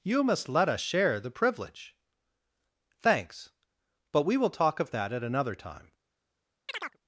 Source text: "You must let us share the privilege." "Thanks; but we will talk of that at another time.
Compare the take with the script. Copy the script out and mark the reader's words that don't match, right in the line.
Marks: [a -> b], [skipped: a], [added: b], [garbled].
"You must let us share the privilege." "Thanks; but we will talk of that at another time.